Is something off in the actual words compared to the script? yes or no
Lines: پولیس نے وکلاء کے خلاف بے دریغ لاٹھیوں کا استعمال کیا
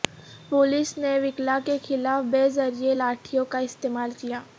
no